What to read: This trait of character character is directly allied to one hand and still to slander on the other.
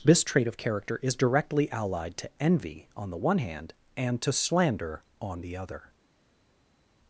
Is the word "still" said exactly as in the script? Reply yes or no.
no